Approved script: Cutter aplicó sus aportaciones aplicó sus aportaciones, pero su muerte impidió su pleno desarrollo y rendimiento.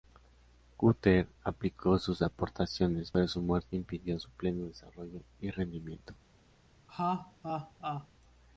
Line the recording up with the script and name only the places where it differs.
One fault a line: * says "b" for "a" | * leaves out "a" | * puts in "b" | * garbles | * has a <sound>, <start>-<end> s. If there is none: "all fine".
* leaves out "aplicó sus aportaciones"
* has a laugh, 6.9-8.1 s